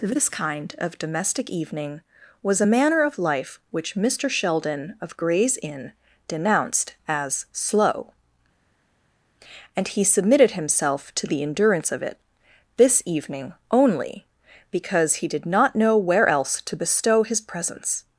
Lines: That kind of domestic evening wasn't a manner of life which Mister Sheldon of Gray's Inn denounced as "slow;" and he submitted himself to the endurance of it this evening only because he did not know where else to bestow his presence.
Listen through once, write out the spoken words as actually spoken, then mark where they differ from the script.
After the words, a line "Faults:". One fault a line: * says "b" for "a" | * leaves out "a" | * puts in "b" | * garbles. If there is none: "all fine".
This kind of domestic evening was a manner of life which Mister Sheldon of Gray's Inn denounced as "slow;" and he submitted himself to the endurance of it this evening only because he did not know where else to bestow his presence.
Faults:
* says "This" for "That"
* says "was" for "wasn't"